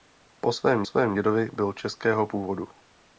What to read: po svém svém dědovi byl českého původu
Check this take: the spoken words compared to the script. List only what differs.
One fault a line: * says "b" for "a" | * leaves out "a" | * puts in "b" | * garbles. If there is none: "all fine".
all fine